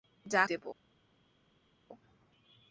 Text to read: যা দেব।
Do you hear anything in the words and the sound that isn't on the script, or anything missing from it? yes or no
no